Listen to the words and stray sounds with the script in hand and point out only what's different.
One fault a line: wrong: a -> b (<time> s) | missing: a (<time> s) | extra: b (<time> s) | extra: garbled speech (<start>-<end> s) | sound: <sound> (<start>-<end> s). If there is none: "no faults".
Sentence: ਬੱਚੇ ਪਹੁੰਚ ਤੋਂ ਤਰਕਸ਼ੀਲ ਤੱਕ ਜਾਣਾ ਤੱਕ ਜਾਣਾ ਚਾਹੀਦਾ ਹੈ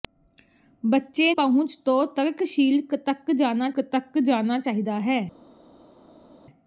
no faults